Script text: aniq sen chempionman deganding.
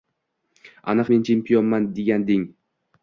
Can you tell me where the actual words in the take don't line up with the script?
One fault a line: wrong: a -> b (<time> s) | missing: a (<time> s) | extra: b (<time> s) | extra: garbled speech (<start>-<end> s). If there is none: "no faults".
wrong: sen -> men (1.1 s)